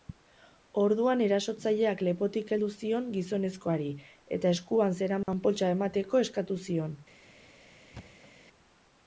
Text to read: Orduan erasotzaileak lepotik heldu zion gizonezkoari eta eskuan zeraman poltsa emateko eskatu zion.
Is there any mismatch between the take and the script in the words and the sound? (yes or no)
yes